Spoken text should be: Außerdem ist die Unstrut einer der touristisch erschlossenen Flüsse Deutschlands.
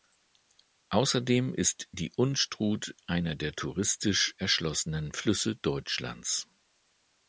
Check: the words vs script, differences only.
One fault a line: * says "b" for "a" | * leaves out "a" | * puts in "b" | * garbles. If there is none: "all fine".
all fine